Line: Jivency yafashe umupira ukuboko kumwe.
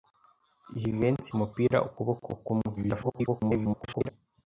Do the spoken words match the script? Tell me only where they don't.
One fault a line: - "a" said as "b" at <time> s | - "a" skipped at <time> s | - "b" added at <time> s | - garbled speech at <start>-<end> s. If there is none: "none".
- "yafashe" skipped at 1.3 s
- garbled speech at 2.8-4.1 s